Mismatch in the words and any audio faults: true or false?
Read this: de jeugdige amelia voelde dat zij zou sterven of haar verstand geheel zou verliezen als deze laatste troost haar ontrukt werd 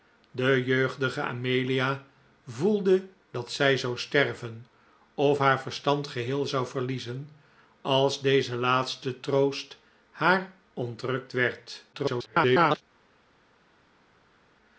true